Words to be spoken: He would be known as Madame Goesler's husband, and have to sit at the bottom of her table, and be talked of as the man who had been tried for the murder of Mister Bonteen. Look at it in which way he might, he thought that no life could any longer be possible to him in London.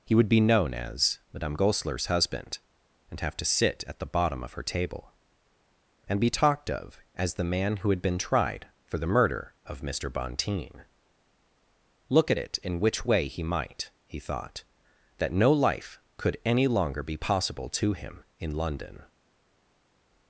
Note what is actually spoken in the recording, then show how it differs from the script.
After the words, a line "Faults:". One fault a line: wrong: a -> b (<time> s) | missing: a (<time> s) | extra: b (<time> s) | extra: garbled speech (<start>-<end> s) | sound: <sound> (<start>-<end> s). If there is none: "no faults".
He would be known as Madame Goesler's husband, and have to sit at the bottom of her table, and be talked of as the man who had been tried for the murder of Mister Bonteen. Look at it in which way he might, he thought that no life could any longer be possible to him in London.
Faults:
no faults